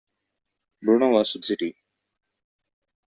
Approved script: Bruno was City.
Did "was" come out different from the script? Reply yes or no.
no